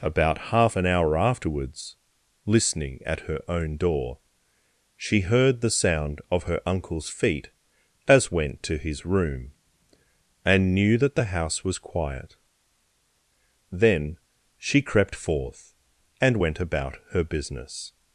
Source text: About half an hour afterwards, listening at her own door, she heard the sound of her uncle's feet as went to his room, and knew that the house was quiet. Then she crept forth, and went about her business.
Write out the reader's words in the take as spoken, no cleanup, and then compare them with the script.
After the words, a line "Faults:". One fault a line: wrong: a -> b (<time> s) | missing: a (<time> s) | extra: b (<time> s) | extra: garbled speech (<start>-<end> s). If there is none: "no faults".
About half an hour afterwards, listening at her own door, she heard the sound of her uncle's feet as went to his room, and knew that the house was quiet. Then she crept forth, and went about her business.
Faults:
no faults